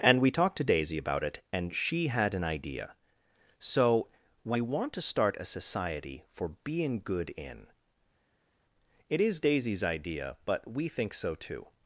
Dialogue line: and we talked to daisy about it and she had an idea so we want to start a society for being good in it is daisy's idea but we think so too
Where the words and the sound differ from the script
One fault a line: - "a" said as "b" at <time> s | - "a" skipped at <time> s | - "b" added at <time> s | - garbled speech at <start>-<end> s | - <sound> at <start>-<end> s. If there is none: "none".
none